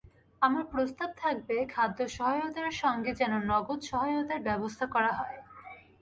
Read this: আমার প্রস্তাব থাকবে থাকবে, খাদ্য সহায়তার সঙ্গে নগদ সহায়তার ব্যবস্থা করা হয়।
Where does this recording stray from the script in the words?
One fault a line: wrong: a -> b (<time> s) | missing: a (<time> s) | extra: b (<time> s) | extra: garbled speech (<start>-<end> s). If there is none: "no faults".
missing: থাকবে (1.6 s)
extra: যেন (3.2 s)